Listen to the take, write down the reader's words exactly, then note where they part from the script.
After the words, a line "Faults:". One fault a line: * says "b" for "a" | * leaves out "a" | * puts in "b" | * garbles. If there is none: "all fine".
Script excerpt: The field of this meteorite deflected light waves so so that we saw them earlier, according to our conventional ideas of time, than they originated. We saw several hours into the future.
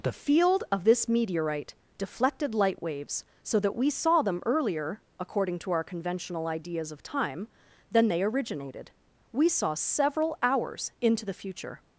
The field of this meteorite deflected light waves so that we saw them earlier, according to our conventional ideas of time, than they originated. We saw several hours into the future.
Faults:
* leaves out "so"